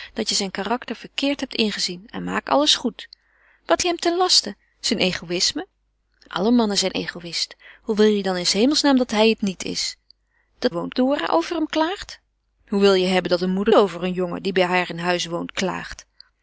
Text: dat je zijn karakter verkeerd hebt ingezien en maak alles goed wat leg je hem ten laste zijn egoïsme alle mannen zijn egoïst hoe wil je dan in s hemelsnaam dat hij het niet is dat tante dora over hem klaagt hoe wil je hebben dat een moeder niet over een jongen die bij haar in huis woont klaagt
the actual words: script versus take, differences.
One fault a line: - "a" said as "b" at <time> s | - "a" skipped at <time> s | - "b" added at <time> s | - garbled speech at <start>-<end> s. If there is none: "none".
- "leg" skipped at 3.8 s
- "tante" said as "woont" at 10.7 s
- "niet" skipped at 13.7 s